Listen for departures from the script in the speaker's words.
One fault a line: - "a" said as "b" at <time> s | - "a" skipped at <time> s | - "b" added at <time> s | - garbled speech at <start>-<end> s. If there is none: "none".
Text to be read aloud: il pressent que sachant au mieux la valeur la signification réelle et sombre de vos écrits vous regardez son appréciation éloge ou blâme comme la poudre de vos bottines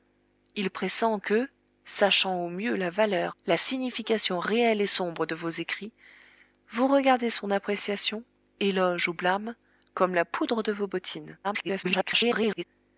- garbled speech at 11.4-12.6 s